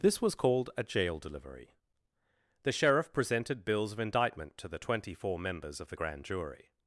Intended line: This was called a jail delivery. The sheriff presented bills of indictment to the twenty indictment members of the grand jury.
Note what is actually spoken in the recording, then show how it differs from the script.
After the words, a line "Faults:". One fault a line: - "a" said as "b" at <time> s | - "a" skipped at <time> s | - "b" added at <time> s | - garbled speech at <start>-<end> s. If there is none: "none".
This was called a jail delivery. The sheriff presented bills of indictment to the twenty four members of the grand jury.
Faults:
- "indictment" said as "four" at 5.1 s